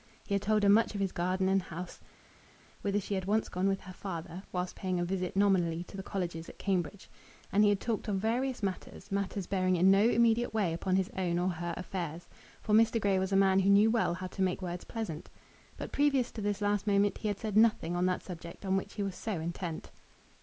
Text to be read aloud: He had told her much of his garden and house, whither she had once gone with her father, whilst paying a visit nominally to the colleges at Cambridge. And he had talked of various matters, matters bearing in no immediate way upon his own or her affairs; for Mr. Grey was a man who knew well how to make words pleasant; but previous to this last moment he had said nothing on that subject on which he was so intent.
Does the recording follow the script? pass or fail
pass